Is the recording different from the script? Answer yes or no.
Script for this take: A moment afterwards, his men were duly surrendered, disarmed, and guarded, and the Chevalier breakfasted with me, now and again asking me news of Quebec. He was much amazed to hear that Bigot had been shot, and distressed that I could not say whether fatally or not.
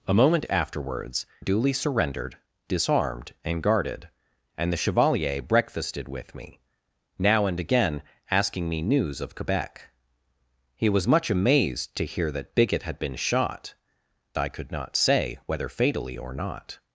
yes